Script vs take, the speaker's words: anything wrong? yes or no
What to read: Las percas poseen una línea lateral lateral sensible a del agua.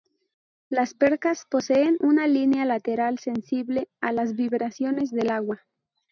yes